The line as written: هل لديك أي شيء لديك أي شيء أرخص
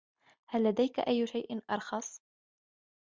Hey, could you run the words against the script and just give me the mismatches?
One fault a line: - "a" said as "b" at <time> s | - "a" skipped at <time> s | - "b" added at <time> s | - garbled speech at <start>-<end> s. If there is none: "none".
- "لديك أي شيء" skipped at 1.7 s